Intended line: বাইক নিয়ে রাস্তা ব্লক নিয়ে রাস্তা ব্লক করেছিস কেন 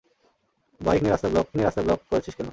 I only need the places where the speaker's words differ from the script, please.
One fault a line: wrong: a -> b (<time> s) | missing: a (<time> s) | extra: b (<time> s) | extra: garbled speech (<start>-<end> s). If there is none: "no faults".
no faults